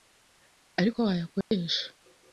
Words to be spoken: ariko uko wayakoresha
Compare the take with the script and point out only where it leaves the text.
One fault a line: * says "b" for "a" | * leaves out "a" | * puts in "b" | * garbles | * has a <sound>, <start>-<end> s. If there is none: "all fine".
* has a dropout, 1.4-1.5 s